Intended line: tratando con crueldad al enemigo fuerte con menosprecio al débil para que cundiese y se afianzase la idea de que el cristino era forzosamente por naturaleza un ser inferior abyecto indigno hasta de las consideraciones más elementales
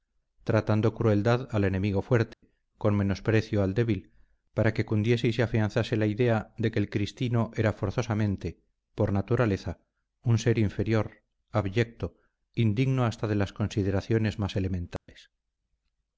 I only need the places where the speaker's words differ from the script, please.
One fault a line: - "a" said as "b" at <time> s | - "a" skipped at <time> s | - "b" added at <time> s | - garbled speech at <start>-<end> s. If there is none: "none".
- "con" skipped at 0.9 s